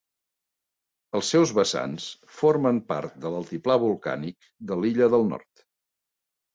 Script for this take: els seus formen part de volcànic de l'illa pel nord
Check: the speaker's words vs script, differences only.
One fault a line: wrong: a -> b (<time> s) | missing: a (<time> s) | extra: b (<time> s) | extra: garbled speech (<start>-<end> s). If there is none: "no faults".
extra: vessants (1.6 s)
extra: l'altiplà (3.4 s)
wrong: pel -> del (5.2 s)